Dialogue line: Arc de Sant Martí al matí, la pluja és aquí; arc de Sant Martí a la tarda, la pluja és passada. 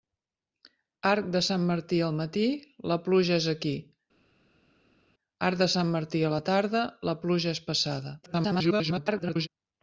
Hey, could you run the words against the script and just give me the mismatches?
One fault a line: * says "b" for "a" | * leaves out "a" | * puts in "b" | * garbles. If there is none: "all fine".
* garbles